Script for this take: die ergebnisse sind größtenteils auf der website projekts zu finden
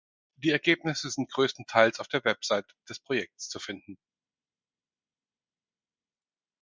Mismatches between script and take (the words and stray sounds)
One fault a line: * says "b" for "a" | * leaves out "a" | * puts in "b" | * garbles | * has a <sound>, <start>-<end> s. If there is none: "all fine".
* puts in "des"